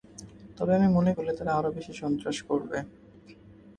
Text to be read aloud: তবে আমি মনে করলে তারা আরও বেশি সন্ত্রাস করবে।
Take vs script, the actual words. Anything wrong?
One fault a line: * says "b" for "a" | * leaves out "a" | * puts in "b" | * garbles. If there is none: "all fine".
all fine